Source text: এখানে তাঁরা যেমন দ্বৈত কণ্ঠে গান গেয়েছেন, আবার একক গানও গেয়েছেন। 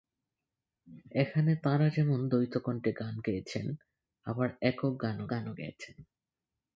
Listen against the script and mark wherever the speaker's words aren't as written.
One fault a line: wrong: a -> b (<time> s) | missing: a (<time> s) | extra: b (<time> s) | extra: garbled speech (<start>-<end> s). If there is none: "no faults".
extra: গানও (5.3 s)